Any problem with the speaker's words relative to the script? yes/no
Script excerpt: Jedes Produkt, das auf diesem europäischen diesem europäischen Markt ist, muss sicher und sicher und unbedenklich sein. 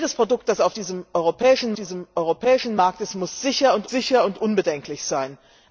no